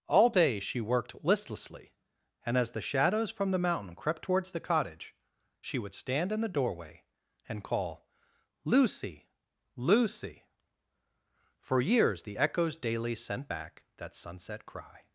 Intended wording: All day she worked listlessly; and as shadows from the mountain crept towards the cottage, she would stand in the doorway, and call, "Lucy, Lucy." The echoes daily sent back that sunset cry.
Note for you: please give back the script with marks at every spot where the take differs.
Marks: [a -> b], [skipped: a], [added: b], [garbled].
All day she worked listlessly; and as [added: the] shadows from the mountain crept towards the cottage, she would stand in the doorway, and call, "Lucy, Lucy." [added: For years] The echoes daily sent back that sunset cry.